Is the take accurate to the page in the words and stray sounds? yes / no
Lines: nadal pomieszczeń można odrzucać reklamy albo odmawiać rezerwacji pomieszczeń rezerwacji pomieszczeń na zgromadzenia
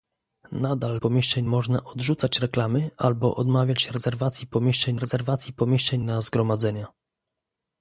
yes